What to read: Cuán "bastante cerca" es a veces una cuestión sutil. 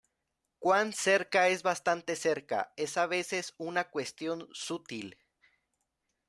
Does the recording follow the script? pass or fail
fail